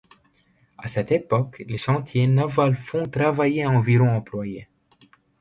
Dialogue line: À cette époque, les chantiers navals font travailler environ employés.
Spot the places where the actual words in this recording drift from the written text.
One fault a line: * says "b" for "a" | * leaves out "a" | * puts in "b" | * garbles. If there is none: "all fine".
all fine